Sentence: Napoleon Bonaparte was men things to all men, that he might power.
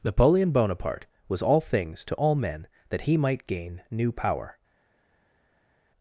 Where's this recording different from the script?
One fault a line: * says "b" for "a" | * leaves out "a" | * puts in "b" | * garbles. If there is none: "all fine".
* says "all" for "men"
* puts in "gain new"